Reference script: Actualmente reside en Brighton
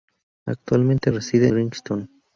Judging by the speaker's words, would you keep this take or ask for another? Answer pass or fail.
fail